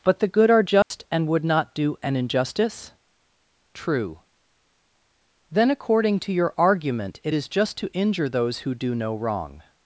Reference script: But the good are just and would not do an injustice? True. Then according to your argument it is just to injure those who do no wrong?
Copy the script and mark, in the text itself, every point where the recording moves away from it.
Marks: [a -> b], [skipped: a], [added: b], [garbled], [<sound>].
But the good are just [dropout] and would not do an injustice? True. Then according to your argument it is just to injure those who do no wrong?